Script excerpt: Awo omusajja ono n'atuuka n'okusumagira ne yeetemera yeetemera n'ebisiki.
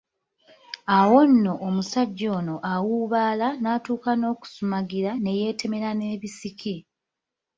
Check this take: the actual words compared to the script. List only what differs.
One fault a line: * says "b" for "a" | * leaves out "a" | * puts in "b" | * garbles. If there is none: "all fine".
* puts in "nno"
* puts in "awuubaala"
* leaves out "yeetemera"